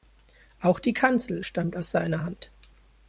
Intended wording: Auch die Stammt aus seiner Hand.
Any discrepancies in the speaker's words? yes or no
yes